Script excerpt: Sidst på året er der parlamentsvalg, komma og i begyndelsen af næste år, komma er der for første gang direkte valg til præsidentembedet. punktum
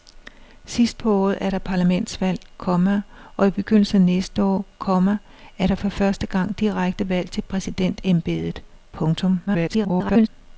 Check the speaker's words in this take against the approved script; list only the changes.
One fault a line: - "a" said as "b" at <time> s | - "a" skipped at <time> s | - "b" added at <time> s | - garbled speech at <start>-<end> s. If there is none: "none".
- garbled speech at 9.5-10.3 s